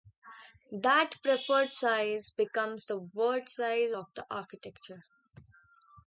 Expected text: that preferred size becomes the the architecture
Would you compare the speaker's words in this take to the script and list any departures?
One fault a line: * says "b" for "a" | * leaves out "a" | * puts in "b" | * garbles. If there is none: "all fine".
* puts in "word size of"